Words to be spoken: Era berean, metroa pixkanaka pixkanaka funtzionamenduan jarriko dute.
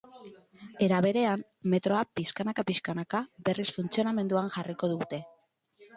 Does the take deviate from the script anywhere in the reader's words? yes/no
yes